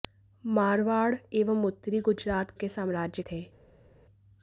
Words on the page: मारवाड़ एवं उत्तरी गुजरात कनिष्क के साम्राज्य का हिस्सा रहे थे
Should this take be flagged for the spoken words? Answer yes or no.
yes